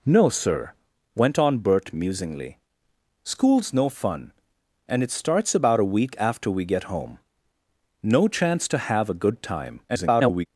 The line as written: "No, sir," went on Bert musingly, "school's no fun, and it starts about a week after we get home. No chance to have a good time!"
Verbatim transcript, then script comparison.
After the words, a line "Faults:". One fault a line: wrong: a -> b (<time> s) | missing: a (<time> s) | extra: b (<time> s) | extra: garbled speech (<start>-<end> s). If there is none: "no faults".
"No, sir," went on Bert musingly, "school's no fun, and it starts about a week after we get home. No chance to have a good time!" [garbled]
Faults:
extra: garbled speech (9.9-10.5 s)